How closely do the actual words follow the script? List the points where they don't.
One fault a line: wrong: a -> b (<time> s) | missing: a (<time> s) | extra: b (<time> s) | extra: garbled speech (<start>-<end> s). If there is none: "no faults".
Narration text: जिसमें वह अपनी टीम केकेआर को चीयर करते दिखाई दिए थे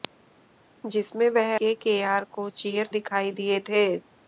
missing: अपनी टीम (1.5 s)
missing: करते (2.9 s)